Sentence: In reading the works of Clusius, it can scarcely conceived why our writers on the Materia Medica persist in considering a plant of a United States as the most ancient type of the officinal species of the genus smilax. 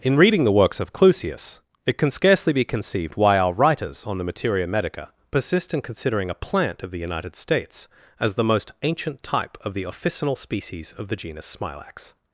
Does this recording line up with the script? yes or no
no